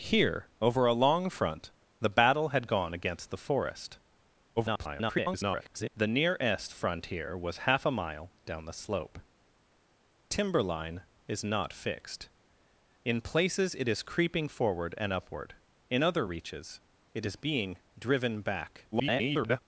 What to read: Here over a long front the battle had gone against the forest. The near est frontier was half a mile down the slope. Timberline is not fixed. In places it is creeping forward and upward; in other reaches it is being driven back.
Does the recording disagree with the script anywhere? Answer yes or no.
yes